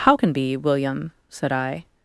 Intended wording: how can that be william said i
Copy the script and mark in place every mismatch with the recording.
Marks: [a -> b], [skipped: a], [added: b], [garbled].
how can [skipped: that] be william said i